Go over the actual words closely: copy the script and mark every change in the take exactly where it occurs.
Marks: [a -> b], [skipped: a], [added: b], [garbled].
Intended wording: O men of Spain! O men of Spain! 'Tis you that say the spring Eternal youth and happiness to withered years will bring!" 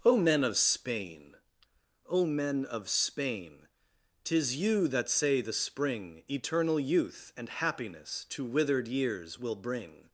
O men of Spain! O men of Spain! 'Tis you that say the spring Eternal youth and happiness to withered years will bring!"